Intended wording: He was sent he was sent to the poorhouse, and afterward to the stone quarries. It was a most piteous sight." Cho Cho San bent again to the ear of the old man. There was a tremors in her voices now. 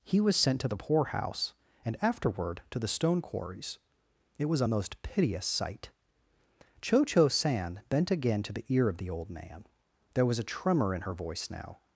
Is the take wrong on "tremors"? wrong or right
wrong